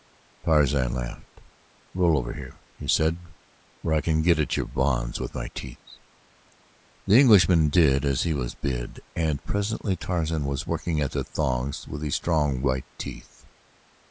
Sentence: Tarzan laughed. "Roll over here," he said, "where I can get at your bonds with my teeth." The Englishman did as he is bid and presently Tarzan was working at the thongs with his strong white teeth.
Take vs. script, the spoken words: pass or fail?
fail